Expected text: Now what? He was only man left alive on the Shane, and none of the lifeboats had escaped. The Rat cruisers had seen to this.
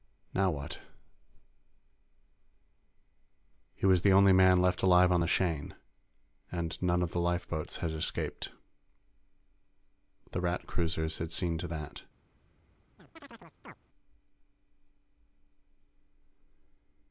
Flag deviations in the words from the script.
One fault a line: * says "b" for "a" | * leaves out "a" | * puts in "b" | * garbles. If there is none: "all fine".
* puts in "the"
* says "that" for "this"